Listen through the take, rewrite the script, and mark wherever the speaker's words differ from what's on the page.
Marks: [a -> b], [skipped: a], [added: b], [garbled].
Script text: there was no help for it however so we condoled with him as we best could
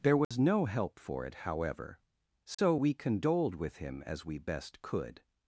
there was no help for it however so we condoled with him as we best could